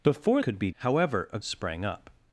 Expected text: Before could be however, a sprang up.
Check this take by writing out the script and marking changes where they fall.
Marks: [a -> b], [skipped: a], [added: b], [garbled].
Before could be however, a sprang up.